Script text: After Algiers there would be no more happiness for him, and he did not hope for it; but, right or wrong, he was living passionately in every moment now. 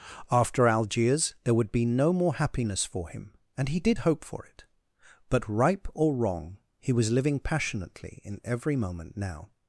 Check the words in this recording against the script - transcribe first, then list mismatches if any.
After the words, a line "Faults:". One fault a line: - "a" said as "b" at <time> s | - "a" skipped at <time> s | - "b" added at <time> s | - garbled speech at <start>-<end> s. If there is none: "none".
After Algiers there would be no more happiness for him, and he did hope for it; but, ripe or wrong, he was living passionately in every moment now.
Faults:
- "not" skipped at 4.0 s
- "right" said as "ripe" at 5.5 s